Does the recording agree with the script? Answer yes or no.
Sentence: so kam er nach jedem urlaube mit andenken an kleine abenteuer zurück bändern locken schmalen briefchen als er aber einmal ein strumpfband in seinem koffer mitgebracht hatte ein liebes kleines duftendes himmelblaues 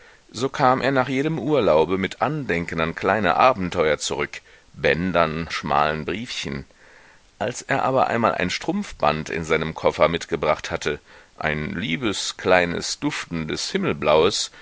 no